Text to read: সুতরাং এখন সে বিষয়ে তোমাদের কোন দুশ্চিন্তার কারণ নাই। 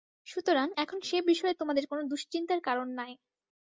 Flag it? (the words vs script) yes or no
no